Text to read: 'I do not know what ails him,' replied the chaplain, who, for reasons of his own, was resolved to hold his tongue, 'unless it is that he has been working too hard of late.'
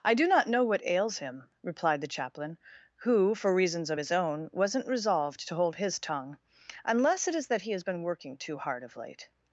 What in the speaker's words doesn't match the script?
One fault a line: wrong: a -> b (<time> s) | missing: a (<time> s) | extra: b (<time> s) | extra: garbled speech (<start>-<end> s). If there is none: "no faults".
wrong: was -> wasn't (4.5 s)